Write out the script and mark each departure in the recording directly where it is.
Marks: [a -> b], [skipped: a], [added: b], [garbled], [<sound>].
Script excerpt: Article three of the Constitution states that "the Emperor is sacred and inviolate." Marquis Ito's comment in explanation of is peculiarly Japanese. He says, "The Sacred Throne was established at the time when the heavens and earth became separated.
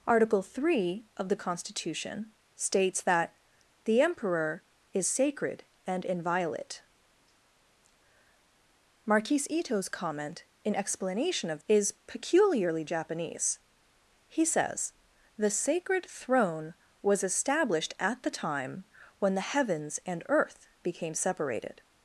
Article three of the Constitution states that "the Emperor is sacred and inviolate." Marquis Ito's comment in explanation of is peculiarly Japanese. He says, "The Sacred Throne was established at the time when the heavens and earth became separated.